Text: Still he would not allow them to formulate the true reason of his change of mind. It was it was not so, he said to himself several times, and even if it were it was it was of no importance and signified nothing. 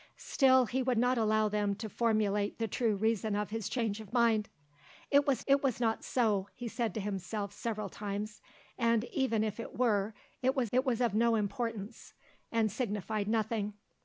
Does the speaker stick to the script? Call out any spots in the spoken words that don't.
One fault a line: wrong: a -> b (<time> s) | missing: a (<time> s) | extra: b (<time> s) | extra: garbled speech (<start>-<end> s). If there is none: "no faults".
no faults